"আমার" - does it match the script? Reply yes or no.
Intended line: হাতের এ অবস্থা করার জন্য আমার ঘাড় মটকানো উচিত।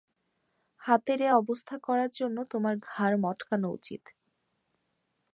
no